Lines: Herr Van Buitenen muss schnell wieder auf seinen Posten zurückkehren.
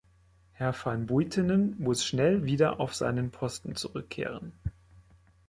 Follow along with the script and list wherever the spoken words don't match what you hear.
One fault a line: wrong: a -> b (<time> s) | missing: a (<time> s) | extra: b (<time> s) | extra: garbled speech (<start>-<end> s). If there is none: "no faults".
no faults